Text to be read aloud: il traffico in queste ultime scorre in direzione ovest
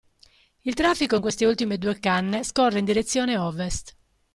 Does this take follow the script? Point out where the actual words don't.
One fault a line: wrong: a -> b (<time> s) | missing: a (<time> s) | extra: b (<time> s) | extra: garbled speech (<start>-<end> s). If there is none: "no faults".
extra: due canne (1.8 s)